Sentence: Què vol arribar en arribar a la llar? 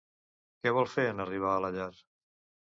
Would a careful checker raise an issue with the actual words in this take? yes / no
yes